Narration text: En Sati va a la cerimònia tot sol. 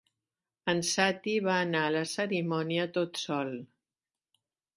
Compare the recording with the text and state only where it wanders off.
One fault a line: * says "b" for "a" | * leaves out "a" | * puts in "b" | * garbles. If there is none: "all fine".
* puts in "anar"